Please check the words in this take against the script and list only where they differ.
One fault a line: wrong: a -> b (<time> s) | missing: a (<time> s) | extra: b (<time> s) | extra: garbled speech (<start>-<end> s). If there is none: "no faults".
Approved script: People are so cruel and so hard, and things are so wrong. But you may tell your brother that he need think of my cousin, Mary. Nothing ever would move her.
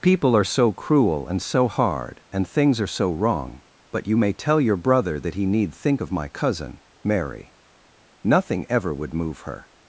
no faults